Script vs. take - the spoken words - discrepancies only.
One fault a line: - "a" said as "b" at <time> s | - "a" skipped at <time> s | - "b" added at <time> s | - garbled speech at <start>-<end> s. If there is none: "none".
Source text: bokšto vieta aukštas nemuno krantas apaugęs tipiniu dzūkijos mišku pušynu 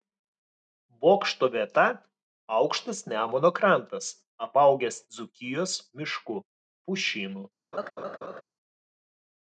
- "tipiniu" skipped at 5.0 s